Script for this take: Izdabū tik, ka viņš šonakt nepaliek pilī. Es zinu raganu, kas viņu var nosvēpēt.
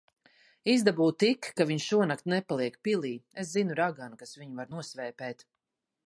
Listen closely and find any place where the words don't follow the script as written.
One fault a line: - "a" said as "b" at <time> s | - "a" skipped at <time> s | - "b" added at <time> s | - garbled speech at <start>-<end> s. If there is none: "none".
none